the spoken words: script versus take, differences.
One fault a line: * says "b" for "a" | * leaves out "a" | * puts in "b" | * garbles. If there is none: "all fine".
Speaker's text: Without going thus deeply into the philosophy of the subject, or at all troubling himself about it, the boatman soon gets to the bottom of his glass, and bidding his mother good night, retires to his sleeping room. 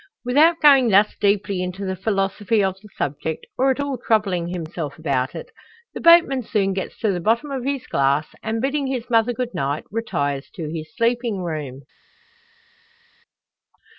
all fine